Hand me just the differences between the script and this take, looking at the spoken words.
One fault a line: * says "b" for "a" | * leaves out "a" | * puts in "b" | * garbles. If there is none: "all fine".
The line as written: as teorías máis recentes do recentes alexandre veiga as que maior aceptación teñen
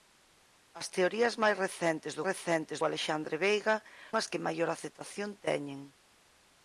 all fine